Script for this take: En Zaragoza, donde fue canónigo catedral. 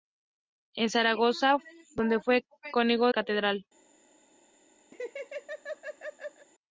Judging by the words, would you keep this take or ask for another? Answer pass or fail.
pass